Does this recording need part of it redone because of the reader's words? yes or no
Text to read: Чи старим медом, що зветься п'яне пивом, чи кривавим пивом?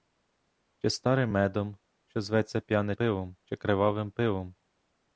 no